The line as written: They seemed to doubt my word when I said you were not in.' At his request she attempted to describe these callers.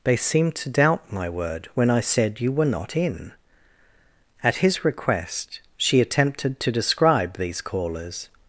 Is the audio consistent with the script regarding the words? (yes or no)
yes